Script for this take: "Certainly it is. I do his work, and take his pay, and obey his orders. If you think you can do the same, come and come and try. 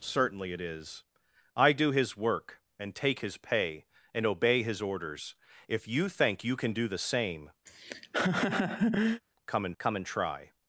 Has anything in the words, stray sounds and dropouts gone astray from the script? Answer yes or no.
yes